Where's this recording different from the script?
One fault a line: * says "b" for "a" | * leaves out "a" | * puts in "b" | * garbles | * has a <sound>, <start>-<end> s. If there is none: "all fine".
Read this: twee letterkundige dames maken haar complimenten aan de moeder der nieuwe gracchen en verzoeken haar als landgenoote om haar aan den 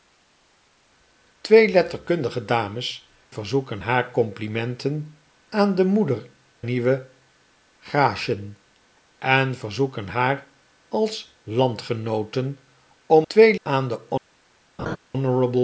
* says "verzoeken" for "maken"
* leaves out "der"
* says "twee" for "haar"
* has a laugh, 14.8-15.0 s